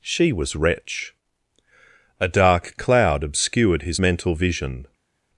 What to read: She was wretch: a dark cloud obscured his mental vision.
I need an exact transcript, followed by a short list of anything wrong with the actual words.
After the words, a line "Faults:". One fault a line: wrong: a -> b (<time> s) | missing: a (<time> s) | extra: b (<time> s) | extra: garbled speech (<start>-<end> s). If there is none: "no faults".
She was wretch: a dark cloud obscured his mental vision.
Faults:
no faults